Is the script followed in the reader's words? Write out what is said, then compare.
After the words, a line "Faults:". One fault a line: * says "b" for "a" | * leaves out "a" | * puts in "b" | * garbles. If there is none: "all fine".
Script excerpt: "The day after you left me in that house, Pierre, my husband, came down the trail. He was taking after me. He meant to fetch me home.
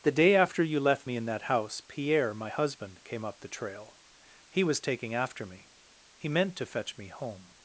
"The day after you left me in that house, Pierre, my husband, came up the trail. He was taking after me. He meant to fetch me home.
Faults:
* says "up" for "down"